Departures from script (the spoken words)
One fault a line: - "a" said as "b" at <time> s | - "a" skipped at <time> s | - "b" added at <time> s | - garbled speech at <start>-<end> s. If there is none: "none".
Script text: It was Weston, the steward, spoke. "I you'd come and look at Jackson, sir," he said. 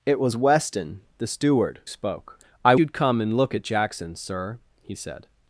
none